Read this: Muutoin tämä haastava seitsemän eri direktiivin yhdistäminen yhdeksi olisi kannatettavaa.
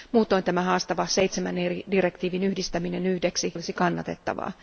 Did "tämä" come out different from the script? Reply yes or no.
no